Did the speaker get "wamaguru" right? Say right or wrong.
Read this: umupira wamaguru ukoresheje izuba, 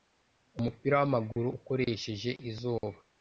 right